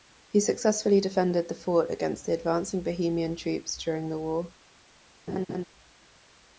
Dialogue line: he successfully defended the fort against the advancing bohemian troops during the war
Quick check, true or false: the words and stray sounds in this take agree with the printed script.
false